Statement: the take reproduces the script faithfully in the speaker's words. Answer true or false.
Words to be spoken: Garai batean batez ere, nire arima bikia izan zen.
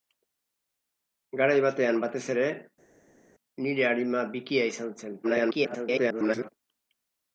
false